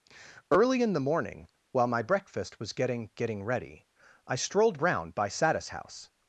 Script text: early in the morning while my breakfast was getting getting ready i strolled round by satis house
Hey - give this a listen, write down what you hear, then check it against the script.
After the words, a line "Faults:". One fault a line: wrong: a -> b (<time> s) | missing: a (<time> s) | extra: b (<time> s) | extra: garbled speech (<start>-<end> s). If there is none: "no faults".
early in the morning while my breakfast was getting getting ready i strolled round by satis house
Faults:
no faults